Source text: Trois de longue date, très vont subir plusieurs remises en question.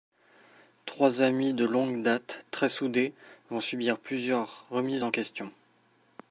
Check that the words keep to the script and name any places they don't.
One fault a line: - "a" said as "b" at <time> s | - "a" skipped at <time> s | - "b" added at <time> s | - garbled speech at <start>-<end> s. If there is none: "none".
- "amis" added at 1.2 s
- "soudés" added at 2.7 s